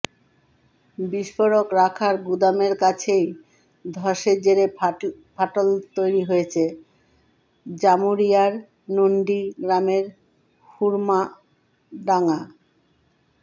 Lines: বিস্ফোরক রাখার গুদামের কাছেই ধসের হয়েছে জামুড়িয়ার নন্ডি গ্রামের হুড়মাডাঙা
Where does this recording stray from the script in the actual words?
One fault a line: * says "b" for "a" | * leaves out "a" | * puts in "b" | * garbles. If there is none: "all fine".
* puts in "জেরে ফাটল তৈরি"